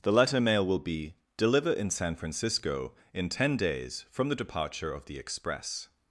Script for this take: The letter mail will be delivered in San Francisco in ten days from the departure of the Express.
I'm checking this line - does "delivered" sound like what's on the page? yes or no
no